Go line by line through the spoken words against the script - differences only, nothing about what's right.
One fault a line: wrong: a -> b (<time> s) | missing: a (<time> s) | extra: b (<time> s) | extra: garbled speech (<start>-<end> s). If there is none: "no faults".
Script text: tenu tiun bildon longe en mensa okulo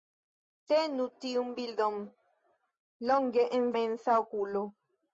no faults